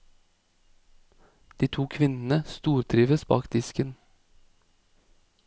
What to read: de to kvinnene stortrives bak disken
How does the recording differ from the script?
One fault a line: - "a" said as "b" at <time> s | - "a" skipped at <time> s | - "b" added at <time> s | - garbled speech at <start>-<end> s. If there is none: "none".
none